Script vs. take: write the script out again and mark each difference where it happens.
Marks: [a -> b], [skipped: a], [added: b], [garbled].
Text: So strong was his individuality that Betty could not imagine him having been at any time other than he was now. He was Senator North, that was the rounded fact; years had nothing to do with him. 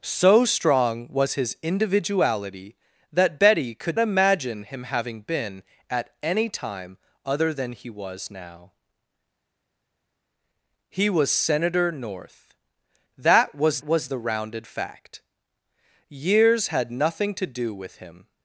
So strong was his individuality that Betty could [skipped: not] imagine him having been at any time other than he was now. He was Senator North, that was [added: was] the rounded fact; years had nothing to do with him.